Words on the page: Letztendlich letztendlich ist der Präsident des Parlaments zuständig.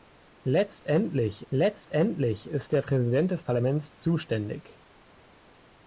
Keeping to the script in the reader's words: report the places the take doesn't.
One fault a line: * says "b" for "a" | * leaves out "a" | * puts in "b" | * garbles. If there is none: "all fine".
all fine